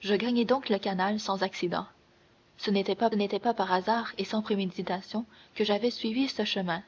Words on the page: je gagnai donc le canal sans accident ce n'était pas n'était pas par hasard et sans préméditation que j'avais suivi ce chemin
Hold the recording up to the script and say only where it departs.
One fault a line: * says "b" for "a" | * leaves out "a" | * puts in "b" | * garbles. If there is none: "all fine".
all fine